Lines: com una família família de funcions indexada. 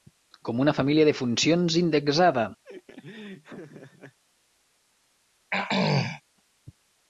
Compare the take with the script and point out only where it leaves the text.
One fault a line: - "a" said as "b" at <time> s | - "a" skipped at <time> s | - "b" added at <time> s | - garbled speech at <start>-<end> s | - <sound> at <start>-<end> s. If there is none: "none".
- "família" skipped at 1.1 s
- laugh at 2.6-4.2 s
- throat clearing at 5.5-6.2 s